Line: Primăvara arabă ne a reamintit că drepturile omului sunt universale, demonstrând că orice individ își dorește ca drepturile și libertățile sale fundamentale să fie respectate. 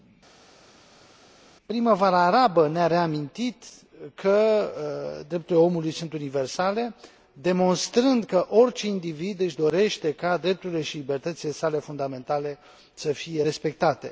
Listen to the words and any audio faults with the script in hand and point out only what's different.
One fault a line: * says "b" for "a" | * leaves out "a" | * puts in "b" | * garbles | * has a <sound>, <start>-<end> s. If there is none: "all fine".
all fine